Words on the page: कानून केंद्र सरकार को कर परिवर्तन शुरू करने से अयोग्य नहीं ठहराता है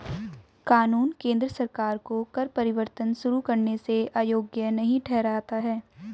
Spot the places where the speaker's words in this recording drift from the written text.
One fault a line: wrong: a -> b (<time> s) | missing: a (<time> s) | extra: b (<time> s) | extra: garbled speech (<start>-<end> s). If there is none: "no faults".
no faults